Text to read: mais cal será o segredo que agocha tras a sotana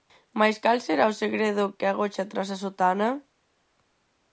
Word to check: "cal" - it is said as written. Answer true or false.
true